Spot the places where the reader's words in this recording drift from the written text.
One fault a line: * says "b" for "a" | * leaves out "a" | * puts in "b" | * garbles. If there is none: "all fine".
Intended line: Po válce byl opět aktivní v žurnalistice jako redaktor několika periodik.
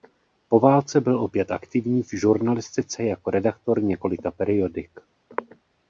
all fine